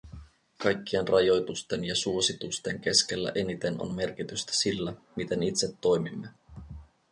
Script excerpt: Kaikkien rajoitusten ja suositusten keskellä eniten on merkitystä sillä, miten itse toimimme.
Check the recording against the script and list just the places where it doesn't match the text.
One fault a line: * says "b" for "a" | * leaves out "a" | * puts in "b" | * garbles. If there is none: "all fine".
all fine